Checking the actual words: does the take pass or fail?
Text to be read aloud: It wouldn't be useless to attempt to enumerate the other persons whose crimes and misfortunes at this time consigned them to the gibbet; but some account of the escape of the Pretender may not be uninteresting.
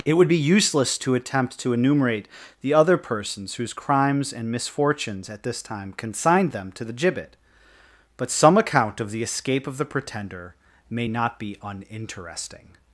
fail